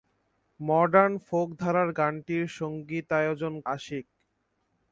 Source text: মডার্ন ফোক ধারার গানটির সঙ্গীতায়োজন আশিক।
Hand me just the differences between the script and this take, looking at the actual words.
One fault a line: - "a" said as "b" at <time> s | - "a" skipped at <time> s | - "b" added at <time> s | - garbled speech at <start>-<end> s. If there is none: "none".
none